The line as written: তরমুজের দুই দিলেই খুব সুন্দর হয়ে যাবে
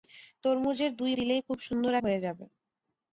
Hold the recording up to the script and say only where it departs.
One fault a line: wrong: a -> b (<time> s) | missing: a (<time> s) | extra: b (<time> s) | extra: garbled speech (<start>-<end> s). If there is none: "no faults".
no faults